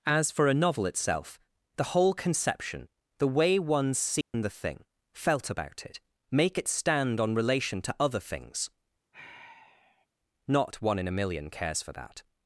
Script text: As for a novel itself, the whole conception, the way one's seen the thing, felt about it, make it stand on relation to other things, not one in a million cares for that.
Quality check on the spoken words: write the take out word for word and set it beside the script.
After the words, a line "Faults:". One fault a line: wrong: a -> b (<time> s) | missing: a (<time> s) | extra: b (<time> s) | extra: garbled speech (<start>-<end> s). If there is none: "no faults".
As for a novel itself, the whole conception, the way one's seen the thing, felt about it, make it stand on relation to other things, not one in a million cares for that.
Faults:
no faults